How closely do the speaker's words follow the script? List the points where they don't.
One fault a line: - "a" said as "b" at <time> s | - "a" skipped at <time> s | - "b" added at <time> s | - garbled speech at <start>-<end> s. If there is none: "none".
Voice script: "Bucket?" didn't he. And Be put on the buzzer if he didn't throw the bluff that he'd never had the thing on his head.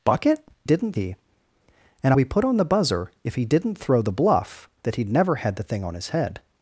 none